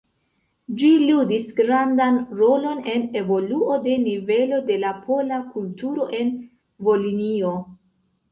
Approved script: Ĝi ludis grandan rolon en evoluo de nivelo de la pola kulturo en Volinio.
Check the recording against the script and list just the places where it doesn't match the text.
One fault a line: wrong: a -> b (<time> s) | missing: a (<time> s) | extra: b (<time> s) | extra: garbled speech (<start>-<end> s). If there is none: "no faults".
no faults